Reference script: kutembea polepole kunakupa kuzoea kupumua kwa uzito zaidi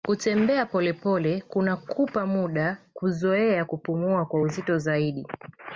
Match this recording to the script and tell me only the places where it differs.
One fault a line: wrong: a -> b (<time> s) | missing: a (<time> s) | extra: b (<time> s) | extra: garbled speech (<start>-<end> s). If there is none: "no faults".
extra: muda (2.2 s)